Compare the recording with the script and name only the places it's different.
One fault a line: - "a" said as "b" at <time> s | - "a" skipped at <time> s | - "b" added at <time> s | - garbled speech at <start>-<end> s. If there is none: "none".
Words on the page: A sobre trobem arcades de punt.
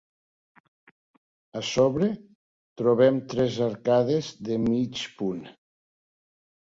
- "tres" added at 3.4 s
- "mig" added at 4.7 s